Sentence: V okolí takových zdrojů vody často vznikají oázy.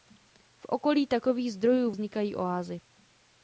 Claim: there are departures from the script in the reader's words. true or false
true